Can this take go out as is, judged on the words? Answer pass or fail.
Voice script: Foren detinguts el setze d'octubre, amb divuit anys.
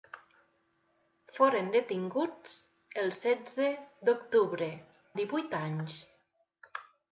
fail